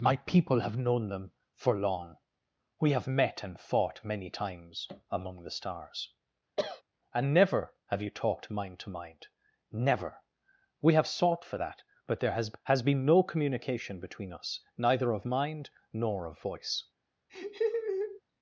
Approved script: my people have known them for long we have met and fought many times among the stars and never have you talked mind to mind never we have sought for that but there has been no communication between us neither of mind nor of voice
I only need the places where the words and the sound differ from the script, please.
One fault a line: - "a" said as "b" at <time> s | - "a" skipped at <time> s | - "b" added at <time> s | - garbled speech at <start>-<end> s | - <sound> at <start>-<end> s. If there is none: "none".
- cough at 6.6-6.8 s
- "has" added at 12.6 s
- laugh at 17.3-18.2 s